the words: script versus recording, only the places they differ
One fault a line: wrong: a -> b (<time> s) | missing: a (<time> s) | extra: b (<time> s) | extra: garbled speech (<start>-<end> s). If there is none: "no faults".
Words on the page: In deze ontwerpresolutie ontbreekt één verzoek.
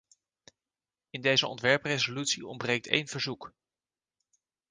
no faults